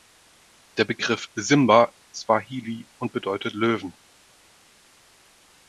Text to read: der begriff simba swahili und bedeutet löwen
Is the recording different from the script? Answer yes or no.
no